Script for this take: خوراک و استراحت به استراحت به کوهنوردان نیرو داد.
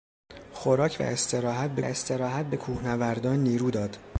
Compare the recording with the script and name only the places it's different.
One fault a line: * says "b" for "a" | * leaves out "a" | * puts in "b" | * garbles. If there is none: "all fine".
all fine